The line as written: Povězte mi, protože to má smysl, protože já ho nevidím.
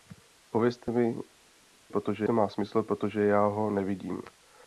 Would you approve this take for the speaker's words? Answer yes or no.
yes